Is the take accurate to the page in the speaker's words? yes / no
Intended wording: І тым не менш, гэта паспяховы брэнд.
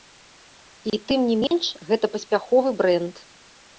yes